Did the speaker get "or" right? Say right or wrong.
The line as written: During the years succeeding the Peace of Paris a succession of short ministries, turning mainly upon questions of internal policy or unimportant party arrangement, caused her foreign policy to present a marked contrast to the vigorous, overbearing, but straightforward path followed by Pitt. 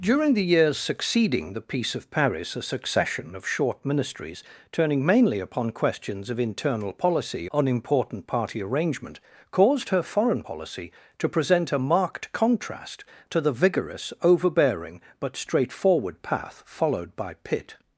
wrong